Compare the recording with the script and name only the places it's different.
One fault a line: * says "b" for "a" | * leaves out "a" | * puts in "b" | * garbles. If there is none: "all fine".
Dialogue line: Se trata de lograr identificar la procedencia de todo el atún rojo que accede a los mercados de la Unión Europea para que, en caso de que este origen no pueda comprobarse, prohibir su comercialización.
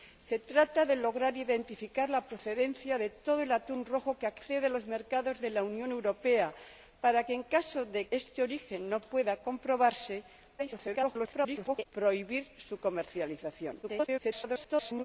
* leaves out "que"
* garbles
* garbles